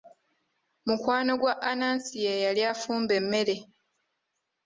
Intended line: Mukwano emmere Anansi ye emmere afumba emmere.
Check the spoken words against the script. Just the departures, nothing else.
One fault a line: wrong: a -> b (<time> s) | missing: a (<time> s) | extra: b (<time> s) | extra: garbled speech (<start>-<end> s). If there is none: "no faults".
wrong: emmere -> gwa (1.4 s)
wrong: emmere -> yali (2.4 s)